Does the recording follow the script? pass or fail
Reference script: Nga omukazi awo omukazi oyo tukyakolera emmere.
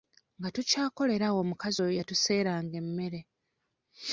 fail